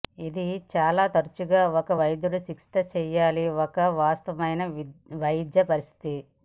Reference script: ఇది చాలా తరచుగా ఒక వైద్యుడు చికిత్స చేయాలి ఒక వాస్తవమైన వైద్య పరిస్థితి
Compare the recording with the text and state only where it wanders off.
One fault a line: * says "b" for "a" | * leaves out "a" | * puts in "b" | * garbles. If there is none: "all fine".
all fine